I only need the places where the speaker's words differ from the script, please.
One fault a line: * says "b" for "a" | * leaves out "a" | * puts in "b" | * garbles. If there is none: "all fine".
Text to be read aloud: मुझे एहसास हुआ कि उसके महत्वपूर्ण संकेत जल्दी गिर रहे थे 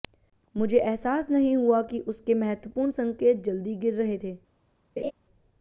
* puts in "नहीं"